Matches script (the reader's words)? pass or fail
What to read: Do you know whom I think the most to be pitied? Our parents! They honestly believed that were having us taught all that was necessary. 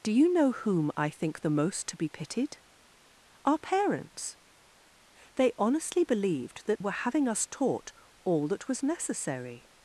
pass